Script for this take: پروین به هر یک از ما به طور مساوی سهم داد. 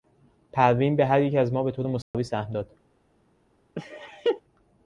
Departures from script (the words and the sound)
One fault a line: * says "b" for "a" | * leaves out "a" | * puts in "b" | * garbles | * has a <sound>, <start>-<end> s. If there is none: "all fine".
* has a dropout, 2.0-2.1 s
* has a laugh, 3.7-4.4 s